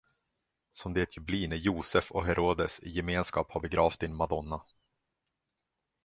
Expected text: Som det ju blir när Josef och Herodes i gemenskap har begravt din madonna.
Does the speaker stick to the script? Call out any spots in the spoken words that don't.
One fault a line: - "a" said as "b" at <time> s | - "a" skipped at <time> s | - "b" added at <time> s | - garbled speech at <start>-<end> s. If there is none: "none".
none